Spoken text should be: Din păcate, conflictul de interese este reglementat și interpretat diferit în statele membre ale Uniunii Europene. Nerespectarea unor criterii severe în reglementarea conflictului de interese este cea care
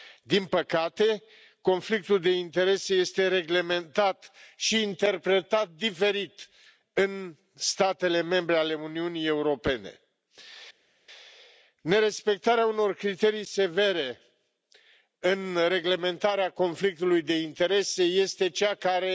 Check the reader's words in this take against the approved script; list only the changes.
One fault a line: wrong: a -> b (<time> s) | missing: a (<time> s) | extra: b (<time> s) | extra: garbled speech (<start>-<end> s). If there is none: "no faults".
no faults